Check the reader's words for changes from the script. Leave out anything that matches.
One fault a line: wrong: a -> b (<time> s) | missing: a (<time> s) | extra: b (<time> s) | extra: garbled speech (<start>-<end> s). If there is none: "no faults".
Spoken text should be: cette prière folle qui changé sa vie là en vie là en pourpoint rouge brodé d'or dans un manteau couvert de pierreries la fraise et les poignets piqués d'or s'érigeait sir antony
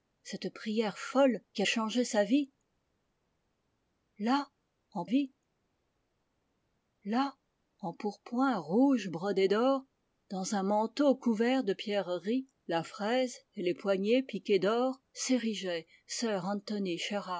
no faults